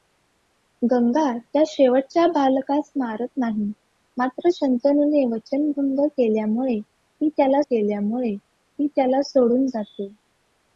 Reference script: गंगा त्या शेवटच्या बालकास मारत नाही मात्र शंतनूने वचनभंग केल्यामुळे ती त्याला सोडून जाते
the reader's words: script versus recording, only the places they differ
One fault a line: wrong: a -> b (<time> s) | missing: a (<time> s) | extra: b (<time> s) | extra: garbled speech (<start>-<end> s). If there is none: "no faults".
extra: केल्यामुळे ती त्याला (7.6 s)